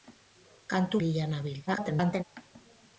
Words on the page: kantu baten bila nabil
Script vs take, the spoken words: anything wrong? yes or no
yes